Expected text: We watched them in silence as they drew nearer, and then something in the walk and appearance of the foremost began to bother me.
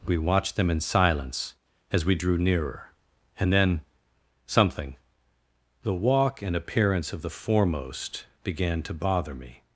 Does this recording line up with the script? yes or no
no